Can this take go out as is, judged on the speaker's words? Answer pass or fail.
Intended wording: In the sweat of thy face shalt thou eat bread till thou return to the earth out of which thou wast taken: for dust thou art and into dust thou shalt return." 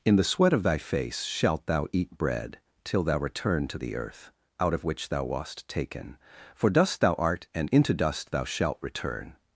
pass